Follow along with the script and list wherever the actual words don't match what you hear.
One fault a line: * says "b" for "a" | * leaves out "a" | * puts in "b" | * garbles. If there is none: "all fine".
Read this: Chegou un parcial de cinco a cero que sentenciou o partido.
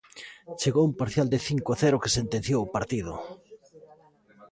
all fine